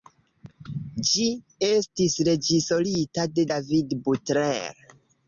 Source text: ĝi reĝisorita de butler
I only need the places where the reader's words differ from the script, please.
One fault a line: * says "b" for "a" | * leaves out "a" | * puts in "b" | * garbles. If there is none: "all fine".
* puts in "estis"
* puts in "david"